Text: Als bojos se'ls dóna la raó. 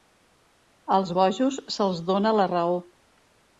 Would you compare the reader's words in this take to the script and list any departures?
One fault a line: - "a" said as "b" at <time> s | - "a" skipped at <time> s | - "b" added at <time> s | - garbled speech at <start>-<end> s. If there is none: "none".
none